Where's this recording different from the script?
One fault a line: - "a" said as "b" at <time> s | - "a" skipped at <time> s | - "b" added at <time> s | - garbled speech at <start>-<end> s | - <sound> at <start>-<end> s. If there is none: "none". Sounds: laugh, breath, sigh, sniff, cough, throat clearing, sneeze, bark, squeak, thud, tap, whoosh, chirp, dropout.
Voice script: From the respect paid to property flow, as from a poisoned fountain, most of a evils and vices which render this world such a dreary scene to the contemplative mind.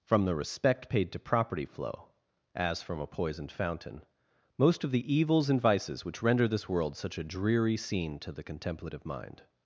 - "a" said as "the" at 4.9 s